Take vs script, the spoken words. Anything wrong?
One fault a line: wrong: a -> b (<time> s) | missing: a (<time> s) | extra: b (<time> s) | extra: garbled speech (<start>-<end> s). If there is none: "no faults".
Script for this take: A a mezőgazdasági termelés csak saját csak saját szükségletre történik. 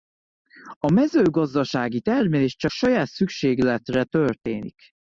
missing: a (0.9 s)
missing: csak saját (3.1 s)